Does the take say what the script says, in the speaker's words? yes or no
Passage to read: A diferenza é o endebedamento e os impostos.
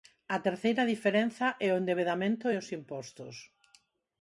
no